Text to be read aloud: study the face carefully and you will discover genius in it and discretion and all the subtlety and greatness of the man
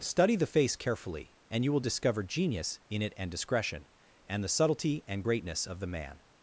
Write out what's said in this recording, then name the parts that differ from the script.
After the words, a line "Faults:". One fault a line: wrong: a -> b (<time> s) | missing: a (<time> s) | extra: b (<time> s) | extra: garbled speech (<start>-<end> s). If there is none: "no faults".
study the face carefully and you will discover genius in it and discretion and the subtlety and greatness of the man
Faults:
missing: all (4.4 s)